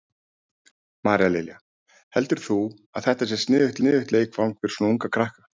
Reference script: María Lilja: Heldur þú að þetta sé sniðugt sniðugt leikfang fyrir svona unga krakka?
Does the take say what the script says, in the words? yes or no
yes